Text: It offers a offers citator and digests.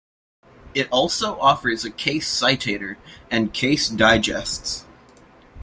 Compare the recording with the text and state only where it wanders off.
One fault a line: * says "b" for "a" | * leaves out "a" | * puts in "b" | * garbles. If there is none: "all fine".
* puts in "also"
* says "case" for "offers"
* puts in "case"